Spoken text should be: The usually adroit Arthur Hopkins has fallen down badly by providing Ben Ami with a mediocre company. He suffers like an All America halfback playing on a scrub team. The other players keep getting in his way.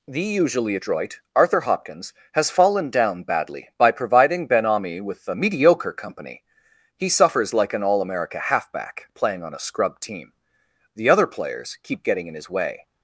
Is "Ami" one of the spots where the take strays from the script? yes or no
no